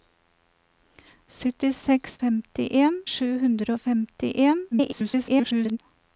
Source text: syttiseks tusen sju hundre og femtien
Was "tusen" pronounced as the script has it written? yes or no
no